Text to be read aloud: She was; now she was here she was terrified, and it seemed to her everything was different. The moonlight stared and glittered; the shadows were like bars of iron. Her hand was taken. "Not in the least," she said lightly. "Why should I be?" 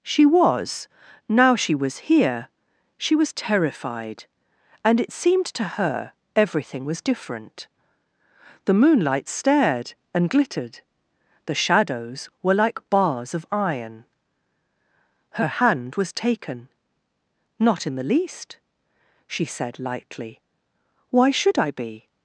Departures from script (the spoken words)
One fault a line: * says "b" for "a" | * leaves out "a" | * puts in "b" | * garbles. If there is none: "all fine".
all fine